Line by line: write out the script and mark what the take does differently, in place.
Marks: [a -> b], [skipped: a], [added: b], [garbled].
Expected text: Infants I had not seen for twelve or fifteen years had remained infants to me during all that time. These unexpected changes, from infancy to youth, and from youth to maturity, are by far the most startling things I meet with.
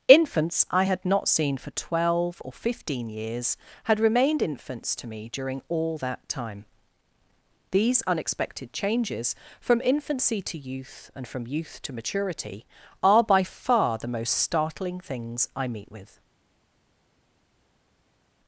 Infants I had not seen for twelve or fifteen years had remained infants to me during all that time. These unexpected changes, from infancy to youth, and from youth to maturity, are by far the most startling things I meet with.